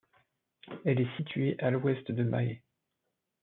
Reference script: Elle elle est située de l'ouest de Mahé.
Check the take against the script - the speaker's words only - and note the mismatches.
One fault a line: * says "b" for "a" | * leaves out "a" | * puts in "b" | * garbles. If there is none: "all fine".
* leaves out "elle"
* says "à" for "de"